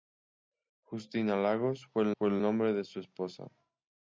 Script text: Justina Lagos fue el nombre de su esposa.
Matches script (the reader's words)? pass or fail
fail